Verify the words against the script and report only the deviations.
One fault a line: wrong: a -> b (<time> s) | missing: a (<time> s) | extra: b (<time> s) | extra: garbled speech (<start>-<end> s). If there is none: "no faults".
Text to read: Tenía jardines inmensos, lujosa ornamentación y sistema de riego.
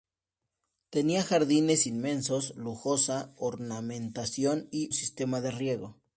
no faults